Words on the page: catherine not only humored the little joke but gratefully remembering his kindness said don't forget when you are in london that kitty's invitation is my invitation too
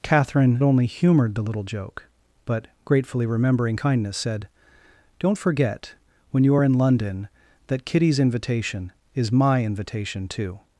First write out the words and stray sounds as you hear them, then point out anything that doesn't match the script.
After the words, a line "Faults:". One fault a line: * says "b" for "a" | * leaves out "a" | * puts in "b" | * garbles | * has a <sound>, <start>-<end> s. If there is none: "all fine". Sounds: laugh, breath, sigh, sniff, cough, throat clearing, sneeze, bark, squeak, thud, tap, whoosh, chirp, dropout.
catherine only humored the little joke but gratefully remembering kindness said don't forget when you are in london that kitty's invitation is my invitation too
Faults:
* leaves out "not"
* leaves out "his"